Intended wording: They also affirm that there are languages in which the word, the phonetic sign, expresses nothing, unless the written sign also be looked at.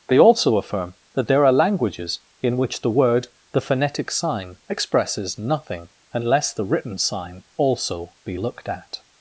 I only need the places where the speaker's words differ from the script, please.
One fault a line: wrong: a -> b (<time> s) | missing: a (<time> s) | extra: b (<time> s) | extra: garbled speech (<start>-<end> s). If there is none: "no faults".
no faults